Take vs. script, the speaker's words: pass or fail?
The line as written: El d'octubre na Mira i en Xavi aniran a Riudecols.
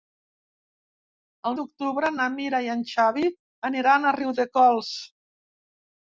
pass